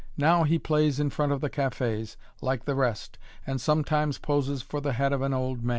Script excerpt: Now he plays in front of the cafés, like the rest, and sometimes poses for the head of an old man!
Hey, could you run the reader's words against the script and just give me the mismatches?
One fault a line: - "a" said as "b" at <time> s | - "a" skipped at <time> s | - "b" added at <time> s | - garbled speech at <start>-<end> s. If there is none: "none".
none